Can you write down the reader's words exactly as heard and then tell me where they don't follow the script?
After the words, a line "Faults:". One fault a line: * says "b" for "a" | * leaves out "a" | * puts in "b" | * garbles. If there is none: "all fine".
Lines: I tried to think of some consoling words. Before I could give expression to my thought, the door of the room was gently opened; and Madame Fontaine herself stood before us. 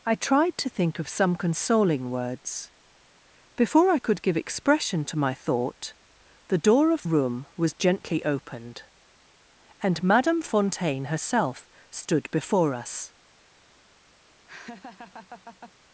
I tried to think of some consoling words. Before I could give expression to my thought, the door of room was gently opened; and Madame Fontaine herself stood before us.
Faults:
* leaves out "the"